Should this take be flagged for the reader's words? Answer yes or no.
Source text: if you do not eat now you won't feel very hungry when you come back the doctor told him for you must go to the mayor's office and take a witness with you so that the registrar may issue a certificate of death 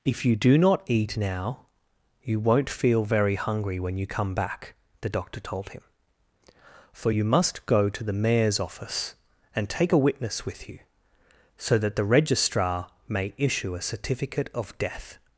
no